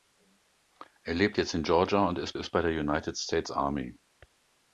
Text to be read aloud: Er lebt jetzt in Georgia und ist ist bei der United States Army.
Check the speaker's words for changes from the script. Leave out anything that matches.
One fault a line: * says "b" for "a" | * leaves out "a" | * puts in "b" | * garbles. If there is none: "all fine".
all fine